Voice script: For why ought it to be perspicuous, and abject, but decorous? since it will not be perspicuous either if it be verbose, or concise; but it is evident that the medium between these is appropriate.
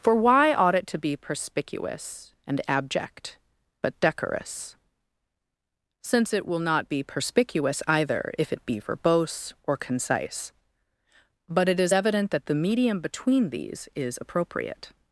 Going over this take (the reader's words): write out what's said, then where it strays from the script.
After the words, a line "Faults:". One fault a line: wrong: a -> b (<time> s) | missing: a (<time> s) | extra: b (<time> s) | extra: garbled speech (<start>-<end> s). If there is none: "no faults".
For why ought it to be perspicuous, and abject, but decorous? since it will not be perspicuous either if it be verbose, or concise; but it is evident that the medium between these is appropriate.
Faults:
no faults